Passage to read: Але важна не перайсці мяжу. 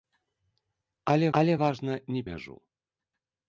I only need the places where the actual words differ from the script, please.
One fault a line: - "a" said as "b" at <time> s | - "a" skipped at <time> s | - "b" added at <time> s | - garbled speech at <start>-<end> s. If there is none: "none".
- "але" added at 1.4 s
- "перайсці" skipped at 2.2 s